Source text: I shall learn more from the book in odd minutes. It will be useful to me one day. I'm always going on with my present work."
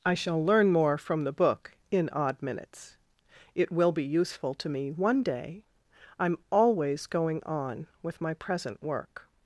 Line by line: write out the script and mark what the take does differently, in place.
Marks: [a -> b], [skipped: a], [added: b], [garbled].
I shall learn more from the book in odd minutes. It will be useful to me one day. I'm always going on with my present work."